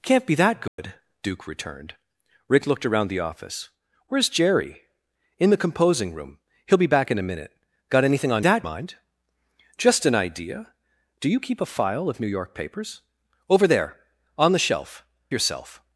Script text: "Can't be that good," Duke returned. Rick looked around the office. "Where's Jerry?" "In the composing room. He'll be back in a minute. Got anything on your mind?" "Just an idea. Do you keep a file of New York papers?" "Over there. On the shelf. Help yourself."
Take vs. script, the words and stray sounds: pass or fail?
fail